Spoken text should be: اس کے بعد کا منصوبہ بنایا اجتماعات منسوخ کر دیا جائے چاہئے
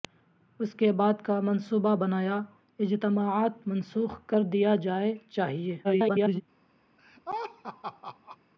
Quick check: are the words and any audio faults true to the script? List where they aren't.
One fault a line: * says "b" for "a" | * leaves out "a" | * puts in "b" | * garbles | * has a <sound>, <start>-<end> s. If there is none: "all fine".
* garbles
* has a laugh, 7.0-8.4 s